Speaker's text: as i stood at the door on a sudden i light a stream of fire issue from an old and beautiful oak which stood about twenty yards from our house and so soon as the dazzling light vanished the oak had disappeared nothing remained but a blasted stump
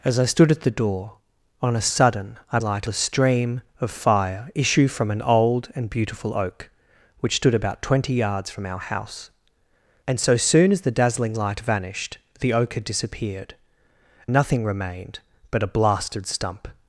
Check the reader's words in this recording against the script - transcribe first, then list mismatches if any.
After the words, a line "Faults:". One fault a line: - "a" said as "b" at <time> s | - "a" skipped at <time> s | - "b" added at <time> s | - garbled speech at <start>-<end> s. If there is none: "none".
as i stood at the door on a sudden i light a stream of fire issue from an old and beautiful oak which stood about twenty yards from our house and so soon as the dazzling light vanished the oak had disappeared nothing remained but a blasted stump
Faults:
none